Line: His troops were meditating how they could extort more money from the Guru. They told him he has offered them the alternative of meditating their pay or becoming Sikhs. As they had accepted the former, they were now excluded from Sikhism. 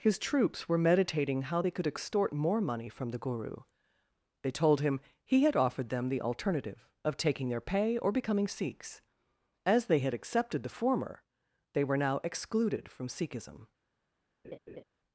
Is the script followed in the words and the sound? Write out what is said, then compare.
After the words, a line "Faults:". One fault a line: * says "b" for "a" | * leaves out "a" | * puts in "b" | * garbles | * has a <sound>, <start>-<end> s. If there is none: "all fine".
His troops were meditating how they could extort more money from the Guru. They told him he had offered them the alternative of taking their pay or becoming Sikhs. As they had accepted the former, they were now excluded from Sikhism.
Faults:
* says "had" for "has"
* says "taking" for "meditating"
* has a laugh, 14.4-14.8 s